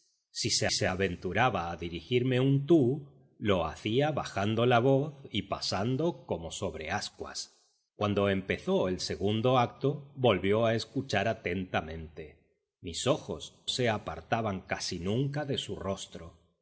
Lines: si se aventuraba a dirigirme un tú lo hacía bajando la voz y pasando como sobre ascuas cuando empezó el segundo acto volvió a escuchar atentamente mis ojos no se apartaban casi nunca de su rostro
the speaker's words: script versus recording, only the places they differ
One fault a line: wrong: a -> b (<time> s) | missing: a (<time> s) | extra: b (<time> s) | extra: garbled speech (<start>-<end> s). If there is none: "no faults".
extra: se (0.7 s)
missing: no (13.5 s)